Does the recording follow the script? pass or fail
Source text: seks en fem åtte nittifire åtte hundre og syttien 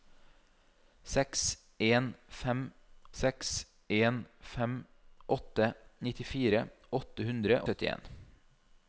fail